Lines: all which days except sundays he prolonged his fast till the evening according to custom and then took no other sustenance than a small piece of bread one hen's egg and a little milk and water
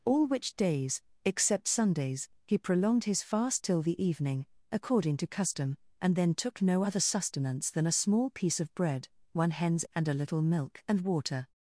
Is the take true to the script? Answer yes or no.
no